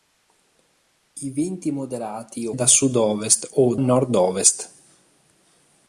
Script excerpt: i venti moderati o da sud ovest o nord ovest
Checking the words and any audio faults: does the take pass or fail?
pass